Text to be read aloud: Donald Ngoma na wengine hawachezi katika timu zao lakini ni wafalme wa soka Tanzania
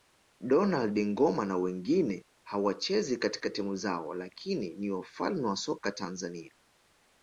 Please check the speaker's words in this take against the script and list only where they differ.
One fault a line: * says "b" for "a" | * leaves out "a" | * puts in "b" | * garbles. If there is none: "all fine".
all fine